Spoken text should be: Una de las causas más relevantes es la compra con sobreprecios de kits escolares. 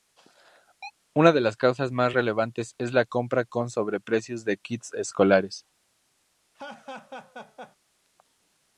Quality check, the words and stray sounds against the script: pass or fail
fail